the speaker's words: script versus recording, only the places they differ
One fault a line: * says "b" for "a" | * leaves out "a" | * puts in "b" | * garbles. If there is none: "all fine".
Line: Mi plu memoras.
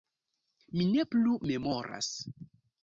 * puts in "ne"